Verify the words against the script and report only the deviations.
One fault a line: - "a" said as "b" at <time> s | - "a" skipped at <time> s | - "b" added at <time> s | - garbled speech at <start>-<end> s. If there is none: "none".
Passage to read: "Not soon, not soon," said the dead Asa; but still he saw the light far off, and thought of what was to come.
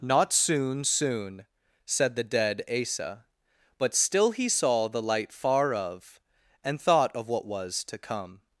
- "not" skipped at 0.8 s
- "off" said as "of" at 5.7 s